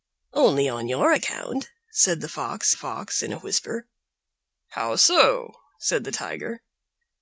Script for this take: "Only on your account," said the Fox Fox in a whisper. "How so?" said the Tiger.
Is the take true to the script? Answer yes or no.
yes